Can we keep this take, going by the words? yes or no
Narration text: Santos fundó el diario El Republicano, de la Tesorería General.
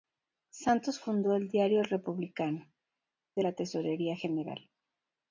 yes